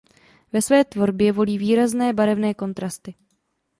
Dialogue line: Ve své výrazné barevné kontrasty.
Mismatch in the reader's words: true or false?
true